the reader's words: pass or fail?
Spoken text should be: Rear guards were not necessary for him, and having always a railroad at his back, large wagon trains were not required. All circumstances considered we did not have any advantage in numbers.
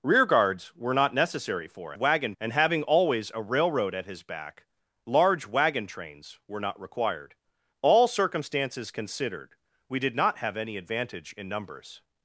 fail